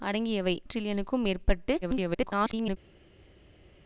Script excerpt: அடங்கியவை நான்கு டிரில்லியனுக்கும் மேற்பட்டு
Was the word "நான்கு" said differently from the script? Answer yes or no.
yes